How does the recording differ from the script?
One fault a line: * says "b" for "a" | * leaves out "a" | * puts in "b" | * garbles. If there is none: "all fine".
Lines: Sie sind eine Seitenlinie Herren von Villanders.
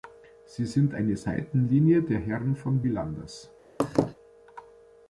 * puts in "der"